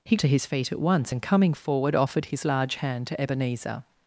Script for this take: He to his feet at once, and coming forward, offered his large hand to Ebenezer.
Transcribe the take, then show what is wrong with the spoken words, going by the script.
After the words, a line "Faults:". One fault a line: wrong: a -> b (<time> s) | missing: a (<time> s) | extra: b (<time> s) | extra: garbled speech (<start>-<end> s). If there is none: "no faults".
He to his feet at once, and coming forward, offered his large hand to Ebenezer.
Faults:
no faults